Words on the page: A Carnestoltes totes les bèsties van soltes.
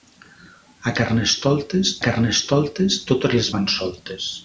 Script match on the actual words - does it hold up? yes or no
no